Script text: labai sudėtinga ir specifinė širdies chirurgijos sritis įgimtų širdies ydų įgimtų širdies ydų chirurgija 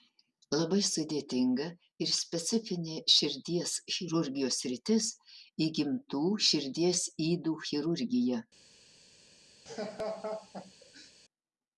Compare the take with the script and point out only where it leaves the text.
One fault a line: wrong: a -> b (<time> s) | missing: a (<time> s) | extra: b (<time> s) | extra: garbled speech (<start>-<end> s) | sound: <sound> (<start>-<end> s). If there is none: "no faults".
missing: įgimtų širdies ydų (7.6 s)
sound: laugh (9.7-11.1 s)